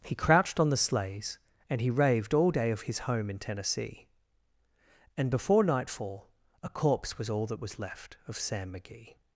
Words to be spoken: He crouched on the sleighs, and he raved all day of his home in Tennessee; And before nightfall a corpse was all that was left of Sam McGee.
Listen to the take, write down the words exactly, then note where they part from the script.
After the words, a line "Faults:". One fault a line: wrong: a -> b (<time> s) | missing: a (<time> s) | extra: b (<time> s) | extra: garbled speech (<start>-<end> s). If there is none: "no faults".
He crouched on the sleighs, and he raved all day of his home in Tennessee; And before nightfall a corpse was all that was left of Sam McGee.
Faults:
no faults